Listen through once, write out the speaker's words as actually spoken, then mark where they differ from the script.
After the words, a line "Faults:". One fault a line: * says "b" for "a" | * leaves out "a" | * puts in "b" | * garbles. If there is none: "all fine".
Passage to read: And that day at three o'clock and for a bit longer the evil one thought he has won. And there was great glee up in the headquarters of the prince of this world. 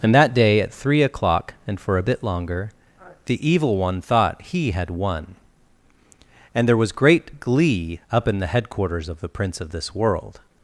And that day at three o'clock and for a bit longer the evil one thought he had won. And there was great glee up in the headquarters of the prince of this world.
Faults:
* says "had" for "has"